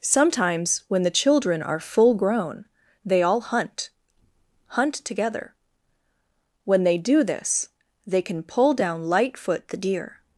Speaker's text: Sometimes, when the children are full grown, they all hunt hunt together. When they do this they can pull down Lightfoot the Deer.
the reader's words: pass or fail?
pass